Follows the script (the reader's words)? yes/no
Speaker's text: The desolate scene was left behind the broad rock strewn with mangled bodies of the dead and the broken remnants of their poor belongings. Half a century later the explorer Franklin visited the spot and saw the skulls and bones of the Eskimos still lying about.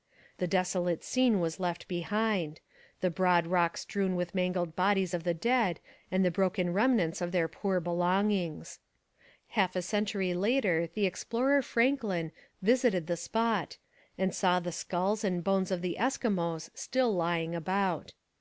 yes